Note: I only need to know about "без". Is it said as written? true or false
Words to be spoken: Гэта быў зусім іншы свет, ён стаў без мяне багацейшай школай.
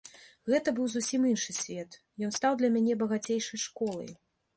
false